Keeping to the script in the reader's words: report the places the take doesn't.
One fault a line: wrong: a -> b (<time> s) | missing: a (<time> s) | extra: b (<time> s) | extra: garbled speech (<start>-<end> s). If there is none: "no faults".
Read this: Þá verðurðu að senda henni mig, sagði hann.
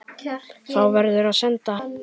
missing: henni mig sagði (1.8 s)